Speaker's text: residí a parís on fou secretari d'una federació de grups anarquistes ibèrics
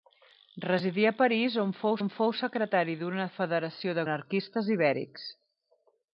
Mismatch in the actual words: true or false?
true